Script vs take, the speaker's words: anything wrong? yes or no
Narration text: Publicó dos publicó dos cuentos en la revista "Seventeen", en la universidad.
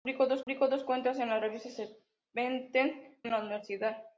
no